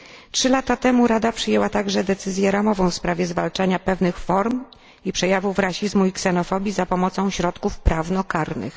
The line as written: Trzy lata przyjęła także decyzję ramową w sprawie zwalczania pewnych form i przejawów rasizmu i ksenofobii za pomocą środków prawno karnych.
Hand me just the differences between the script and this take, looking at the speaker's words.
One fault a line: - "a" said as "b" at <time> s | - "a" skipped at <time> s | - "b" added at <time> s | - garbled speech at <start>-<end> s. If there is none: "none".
- "temu Rada" added at 0.8 s